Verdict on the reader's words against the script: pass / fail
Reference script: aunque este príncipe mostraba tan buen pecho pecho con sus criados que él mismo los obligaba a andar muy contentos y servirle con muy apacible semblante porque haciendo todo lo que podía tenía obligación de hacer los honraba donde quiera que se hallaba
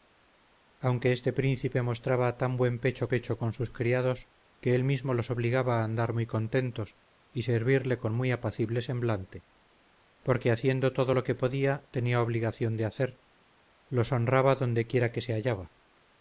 pass